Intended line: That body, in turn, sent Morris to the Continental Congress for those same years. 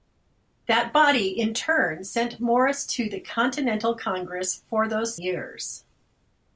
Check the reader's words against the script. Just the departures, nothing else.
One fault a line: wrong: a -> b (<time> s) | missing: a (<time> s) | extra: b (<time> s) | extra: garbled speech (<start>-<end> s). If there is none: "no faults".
missing: same (5.2 s)